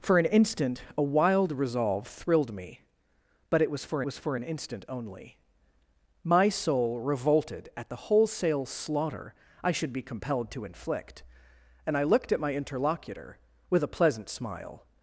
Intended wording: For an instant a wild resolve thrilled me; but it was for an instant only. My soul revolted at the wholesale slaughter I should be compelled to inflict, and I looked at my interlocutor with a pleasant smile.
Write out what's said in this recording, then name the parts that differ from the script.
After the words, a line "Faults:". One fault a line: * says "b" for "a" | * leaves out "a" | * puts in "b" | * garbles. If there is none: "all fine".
For an instant a wild resolve thrilled me; but it was for was for an instant only. My soul revolted at the wholesale slaughter I should be compelled to inflict, and I looked at my interlocutor with a pleasant smile.
Faults:
* puts in "was for"